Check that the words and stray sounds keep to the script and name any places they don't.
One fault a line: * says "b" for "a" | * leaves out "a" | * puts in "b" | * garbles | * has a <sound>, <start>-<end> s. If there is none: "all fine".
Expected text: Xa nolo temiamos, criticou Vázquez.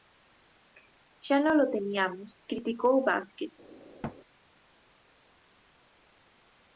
* has a thud, 4.0-4.2 s